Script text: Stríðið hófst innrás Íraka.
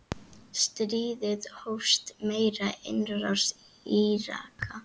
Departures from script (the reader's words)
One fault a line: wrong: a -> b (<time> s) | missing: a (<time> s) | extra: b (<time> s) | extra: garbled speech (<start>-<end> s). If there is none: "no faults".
extra: með (2.3 s)